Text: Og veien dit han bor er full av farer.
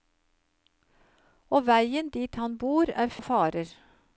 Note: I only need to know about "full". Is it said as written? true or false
false